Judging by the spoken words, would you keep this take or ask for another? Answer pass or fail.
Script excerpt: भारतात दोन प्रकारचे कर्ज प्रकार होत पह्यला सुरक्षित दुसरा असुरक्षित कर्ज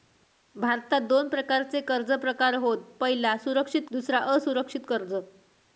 pass